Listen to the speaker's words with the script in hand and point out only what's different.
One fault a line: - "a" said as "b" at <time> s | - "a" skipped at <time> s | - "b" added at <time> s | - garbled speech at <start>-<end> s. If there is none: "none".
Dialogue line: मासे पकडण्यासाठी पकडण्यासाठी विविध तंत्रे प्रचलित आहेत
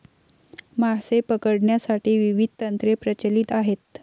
- "पकडण्यासाठी" skipped at 2.2 s